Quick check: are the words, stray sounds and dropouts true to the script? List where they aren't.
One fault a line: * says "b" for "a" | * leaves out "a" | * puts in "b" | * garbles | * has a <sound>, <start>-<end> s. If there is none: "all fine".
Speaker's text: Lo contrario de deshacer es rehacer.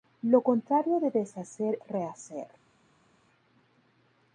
* leaves out "es"